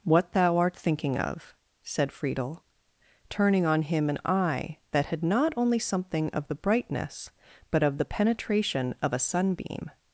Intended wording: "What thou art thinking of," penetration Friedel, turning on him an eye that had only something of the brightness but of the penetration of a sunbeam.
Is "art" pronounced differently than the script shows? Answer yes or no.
no